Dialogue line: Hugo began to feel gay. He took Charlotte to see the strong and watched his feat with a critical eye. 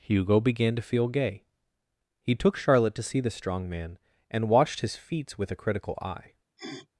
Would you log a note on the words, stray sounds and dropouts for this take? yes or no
yes